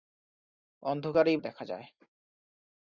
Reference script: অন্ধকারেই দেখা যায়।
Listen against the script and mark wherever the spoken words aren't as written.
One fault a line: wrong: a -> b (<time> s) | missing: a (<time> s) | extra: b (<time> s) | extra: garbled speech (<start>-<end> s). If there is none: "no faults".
no faults